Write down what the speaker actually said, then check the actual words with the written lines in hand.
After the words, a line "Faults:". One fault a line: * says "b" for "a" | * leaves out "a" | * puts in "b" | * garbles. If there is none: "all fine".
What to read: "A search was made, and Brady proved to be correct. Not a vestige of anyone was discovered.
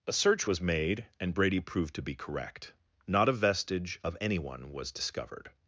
"A search was made, and Brady proved to be correct. Not a vestige of anyone was discovered.
Faults:
all fine